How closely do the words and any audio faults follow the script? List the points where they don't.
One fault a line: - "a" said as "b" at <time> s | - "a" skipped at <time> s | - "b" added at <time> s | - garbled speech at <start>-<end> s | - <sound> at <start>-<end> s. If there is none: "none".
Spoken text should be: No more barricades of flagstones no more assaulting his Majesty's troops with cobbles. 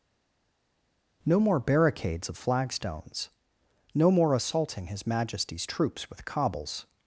none